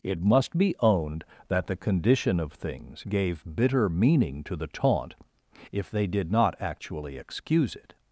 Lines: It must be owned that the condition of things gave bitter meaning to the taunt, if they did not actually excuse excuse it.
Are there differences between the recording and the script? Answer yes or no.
yes